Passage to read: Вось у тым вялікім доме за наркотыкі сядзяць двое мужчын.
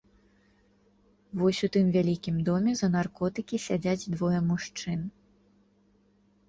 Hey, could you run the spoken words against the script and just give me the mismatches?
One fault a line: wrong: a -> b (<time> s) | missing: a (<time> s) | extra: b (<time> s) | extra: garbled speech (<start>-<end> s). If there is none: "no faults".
no faults